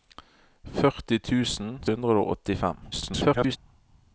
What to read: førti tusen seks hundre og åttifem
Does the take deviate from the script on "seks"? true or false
true